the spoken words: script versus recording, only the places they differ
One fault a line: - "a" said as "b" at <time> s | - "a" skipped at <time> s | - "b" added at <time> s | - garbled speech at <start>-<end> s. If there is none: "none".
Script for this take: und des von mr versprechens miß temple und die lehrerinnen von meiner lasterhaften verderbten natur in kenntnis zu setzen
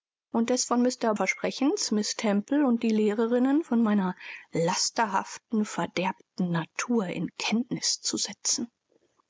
none